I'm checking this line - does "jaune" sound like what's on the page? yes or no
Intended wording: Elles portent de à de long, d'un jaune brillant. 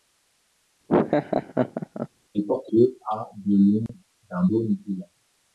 yes